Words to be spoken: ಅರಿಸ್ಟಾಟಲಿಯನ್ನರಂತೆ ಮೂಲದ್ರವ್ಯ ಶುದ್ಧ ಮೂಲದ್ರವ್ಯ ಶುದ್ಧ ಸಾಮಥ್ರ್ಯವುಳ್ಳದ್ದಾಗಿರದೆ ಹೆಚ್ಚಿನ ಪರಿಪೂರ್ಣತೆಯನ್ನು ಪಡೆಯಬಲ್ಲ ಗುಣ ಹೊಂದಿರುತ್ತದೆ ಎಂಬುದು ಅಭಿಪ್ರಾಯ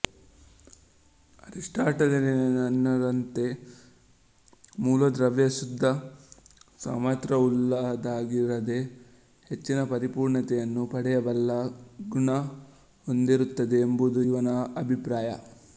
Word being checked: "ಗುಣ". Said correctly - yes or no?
yes